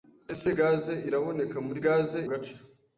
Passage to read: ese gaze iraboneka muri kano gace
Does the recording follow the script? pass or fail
fail